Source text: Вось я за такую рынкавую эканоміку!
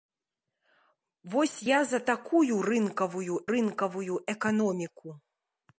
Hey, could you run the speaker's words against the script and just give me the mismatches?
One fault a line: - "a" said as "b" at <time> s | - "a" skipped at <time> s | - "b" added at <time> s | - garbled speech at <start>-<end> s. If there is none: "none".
- "рынкавую" added at 3.5 s